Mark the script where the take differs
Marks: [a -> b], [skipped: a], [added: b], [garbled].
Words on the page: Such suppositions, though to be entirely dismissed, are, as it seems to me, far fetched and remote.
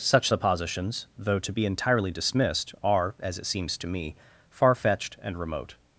Such suppositions, though to be entirely dismissed, are, as it seems to me, far fetched and remote.